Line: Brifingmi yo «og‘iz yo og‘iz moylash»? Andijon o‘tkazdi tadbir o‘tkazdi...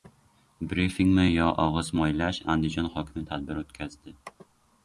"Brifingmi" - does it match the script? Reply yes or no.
yes